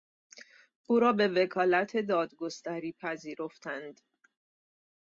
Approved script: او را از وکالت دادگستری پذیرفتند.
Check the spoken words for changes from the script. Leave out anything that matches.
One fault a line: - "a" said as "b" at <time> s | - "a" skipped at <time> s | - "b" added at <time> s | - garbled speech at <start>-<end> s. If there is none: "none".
- "از" said as "به" at 1.1 s